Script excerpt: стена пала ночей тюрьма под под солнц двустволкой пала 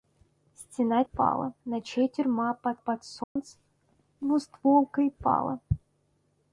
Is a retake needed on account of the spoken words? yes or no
no